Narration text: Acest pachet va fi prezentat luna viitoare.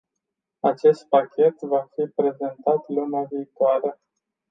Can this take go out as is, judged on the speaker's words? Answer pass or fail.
pass